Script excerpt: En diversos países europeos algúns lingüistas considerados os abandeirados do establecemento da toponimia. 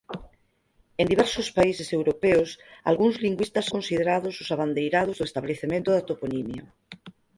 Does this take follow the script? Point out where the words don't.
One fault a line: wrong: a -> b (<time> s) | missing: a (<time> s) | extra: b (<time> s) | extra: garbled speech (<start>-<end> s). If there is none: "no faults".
no faults